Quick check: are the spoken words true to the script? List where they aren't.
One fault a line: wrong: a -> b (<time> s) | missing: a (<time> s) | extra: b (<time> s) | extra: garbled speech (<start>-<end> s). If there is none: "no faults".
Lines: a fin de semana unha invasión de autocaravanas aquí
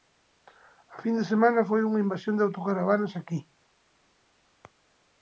extra: foi (1.7 s)